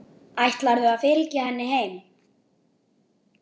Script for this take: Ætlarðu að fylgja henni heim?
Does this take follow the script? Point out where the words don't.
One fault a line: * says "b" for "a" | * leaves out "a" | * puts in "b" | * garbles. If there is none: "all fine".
all fine